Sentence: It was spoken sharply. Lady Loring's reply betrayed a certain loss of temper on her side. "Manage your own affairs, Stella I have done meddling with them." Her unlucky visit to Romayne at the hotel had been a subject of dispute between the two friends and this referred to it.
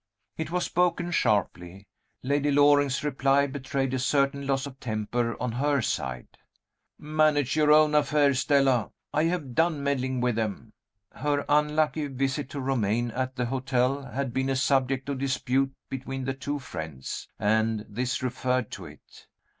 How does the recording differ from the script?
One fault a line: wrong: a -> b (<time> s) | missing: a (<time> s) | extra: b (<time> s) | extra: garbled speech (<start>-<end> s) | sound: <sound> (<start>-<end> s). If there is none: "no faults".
no faults